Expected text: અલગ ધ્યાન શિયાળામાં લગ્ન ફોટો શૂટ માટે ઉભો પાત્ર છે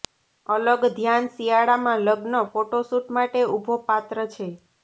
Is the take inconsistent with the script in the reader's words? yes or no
no